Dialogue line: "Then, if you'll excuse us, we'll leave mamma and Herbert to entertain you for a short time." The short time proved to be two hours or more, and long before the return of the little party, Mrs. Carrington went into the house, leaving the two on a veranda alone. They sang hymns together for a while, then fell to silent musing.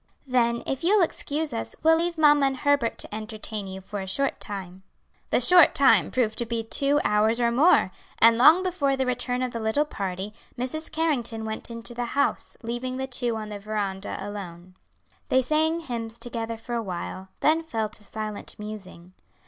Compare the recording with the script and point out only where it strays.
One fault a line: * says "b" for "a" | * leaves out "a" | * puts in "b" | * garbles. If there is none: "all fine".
* says "the" for "a"